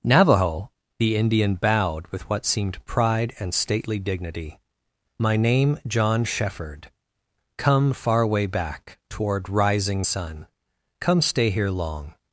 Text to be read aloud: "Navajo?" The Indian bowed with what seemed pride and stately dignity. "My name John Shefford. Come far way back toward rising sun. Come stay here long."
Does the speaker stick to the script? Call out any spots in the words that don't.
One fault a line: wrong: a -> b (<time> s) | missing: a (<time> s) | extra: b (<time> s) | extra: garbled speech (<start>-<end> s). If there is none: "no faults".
no faults